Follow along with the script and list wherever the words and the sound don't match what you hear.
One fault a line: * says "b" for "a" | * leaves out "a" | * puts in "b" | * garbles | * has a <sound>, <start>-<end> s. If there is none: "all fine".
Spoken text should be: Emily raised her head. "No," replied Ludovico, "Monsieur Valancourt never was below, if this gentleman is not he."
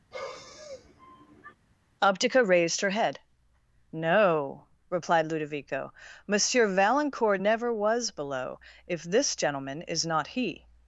* has a sigh, 0.1-1.5 s
* says "Optica" for "Emily"